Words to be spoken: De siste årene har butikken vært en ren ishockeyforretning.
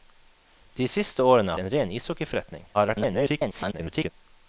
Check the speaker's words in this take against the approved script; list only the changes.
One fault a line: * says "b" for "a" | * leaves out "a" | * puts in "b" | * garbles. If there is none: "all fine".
* leaves out "har butikken vært"
* garbles